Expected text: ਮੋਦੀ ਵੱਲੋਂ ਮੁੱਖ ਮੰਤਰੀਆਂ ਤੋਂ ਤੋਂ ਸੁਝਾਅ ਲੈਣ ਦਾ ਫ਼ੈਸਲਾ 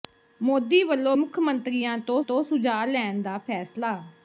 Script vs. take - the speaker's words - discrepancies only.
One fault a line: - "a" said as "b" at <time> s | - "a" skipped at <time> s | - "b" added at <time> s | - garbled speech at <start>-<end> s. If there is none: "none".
none